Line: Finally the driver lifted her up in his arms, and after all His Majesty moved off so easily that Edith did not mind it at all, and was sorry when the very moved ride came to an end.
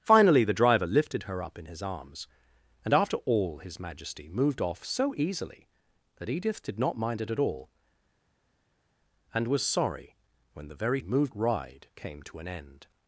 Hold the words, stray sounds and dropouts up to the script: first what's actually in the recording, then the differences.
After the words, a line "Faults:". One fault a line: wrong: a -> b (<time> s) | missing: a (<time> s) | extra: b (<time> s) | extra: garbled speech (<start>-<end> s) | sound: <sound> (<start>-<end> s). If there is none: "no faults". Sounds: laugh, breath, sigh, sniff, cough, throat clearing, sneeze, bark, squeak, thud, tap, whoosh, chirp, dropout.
Finally the driver lifted her up in his arms, and after all His Majesty moved off so easily that Edith did not mind it at all, and was sorry when the very moved ride came to an end.
Faults:
no faults